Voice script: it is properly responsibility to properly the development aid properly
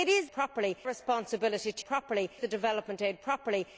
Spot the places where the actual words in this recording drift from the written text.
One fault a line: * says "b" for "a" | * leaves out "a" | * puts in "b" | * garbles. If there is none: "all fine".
all fine